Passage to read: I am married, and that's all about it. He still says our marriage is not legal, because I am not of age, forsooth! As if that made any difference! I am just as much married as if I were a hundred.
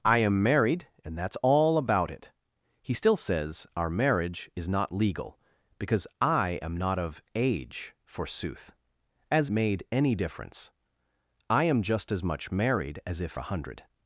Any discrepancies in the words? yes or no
yes